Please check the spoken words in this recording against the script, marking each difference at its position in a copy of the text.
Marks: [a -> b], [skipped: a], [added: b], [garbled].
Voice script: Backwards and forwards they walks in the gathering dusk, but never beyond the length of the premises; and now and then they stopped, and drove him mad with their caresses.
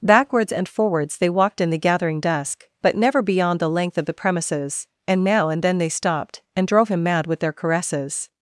Backwards and forwards they [walks -> walked] in the gathering dusk, but never beyond the length of the premises; and now and then they stopped, and drove him mad with their caresses.